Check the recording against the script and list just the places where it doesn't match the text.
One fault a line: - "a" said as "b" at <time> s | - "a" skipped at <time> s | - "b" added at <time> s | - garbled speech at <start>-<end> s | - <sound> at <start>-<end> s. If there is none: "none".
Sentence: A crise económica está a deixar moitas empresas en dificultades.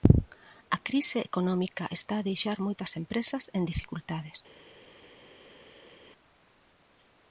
none